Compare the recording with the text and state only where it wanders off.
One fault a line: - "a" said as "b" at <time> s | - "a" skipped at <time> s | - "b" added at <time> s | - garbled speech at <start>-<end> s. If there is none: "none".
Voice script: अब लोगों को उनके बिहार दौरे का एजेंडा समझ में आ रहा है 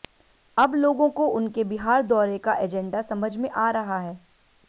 none